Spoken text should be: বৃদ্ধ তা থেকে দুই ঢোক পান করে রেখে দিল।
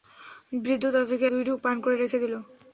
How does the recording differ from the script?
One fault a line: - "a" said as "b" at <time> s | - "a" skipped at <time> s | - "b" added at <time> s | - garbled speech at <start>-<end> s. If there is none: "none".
none